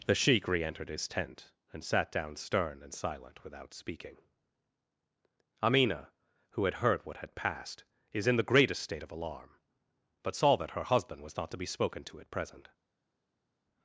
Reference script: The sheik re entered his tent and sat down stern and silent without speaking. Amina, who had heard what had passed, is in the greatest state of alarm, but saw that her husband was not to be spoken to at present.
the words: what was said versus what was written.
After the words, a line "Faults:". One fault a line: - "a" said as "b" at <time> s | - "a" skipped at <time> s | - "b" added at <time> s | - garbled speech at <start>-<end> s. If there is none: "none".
The sheik re entered his tent and sat down stern and silent without speaking. Amina, who had heard what had passed, is in the greatest state of alarm, but saw that her husband was not to be spoken to at present.
Faults:
none